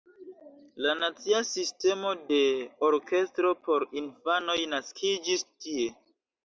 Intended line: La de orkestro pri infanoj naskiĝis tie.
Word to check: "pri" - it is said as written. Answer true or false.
false